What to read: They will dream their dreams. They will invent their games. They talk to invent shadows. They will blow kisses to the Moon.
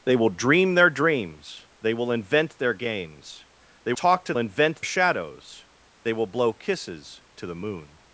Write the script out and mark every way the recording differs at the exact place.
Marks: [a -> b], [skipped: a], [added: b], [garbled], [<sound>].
They will dream their dreams. They will invent their games. They talk to invent shadows. They will blow kisses to the Moon.